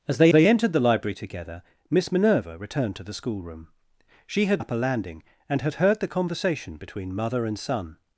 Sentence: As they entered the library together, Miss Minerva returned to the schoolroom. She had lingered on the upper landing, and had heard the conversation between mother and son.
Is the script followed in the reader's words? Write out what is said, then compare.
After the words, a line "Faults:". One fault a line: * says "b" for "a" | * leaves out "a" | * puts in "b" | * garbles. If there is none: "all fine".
As they they entered the library together, Miss Minerva returned to the schoolroom. She had upper landing, and had heard the conversation between mother and son.
Faults:
* puts in "they"
* leaves out "lingered on the"